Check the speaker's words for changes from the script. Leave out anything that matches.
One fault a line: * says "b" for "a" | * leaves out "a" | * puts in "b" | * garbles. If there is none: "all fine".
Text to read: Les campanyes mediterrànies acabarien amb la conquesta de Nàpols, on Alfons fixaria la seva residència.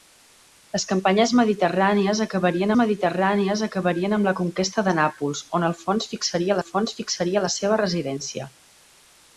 * puts in "mediterrànies acabarien"
* puts in "Alfons fixaria"